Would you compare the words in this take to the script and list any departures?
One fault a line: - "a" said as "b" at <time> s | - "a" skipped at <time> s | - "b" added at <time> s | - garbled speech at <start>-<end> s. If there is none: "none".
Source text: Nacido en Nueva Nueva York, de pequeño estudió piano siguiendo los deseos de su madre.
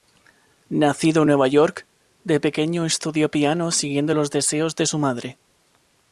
- "Nueva" skipped at 1.5 s